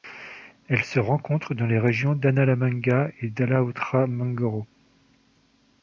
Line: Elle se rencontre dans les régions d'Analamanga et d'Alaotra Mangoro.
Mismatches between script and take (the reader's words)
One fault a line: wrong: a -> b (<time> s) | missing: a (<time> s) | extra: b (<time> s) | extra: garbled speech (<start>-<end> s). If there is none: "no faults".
no faults